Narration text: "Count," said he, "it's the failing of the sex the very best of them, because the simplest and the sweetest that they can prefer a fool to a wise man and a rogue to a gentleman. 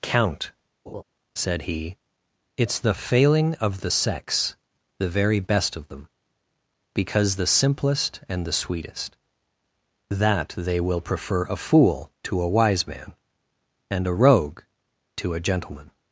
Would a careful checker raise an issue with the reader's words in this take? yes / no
yes